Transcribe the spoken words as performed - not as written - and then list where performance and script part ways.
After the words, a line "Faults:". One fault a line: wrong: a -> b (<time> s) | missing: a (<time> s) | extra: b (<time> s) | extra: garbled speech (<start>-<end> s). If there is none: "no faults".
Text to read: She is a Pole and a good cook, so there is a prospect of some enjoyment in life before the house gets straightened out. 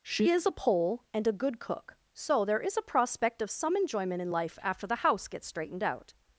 She is a Pole and a good cook, so there is a prospect of some enjoyment in life after the house gets straightened out.
Faults:
wrong: before -> after (4.6 s)